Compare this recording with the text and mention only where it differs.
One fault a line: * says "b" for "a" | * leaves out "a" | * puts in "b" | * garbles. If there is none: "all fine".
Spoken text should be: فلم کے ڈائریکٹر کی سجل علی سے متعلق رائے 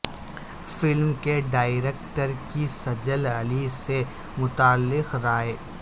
all fine